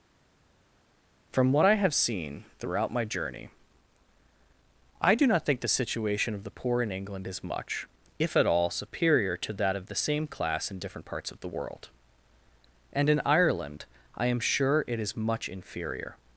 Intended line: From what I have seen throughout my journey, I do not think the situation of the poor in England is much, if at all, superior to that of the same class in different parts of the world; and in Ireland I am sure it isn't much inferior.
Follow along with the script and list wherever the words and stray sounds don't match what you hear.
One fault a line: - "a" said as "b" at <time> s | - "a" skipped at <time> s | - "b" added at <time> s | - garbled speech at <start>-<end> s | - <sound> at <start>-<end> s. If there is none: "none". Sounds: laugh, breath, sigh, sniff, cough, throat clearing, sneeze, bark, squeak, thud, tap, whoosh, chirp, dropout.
- "isn't" said as "is" at 15.0 s